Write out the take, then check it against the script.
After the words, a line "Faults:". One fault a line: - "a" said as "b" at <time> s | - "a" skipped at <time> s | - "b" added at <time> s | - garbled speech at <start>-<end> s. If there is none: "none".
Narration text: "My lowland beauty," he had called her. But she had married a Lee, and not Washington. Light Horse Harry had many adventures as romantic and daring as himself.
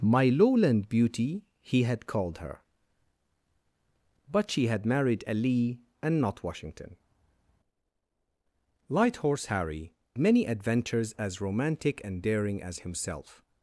"My lowland beauty," he had called her. But she had married a Lee, and not Washington. Light Horse Harry many adventures as romantic and daring as himself.
Faults:
- "had" skipped at 9.9 s